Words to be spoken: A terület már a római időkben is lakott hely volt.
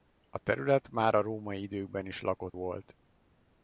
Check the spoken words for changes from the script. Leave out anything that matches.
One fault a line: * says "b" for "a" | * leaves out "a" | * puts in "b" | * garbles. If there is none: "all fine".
* leaves out "hely"